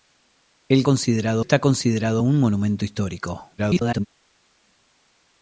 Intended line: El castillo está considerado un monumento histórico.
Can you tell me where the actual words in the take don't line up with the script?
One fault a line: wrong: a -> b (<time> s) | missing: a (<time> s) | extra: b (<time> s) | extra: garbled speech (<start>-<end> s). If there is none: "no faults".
wrong: castillo -> considerado (0.8 s)
extra: garbled speech (3.6-4.1 s)